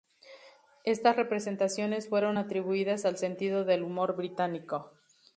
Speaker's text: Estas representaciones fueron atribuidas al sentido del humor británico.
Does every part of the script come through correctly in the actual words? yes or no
yes